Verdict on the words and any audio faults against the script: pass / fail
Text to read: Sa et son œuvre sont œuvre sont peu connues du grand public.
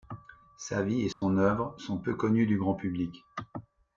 fail